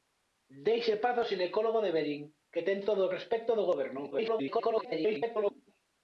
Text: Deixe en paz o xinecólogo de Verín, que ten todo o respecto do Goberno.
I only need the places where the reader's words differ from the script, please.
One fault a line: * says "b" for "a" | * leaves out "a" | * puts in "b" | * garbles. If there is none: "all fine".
* garbles